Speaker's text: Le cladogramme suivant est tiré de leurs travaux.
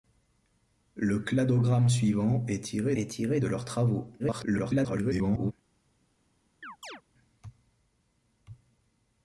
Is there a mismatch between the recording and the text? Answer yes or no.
yes